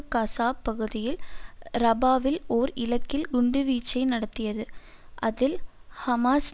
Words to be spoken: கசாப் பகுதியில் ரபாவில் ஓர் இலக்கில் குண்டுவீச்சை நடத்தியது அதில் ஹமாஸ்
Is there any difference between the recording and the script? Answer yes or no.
no